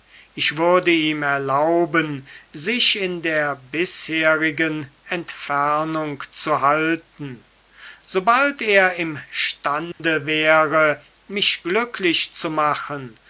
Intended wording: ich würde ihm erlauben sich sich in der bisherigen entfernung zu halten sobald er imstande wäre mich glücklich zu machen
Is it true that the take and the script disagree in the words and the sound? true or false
true